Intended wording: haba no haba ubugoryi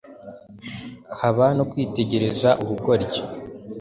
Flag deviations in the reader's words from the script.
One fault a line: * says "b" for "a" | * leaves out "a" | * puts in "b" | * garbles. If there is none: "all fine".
* says "kwitegereza" for "haba"